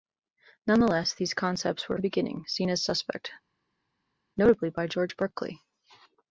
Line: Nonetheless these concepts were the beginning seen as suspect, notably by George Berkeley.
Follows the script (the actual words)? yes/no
yes